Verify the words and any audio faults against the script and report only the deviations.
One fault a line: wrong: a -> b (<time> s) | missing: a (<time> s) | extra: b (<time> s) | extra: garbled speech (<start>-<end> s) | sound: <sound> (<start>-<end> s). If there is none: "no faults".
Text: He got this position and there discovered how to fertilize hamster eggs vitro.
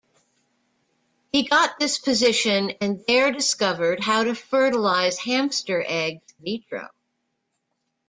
no faults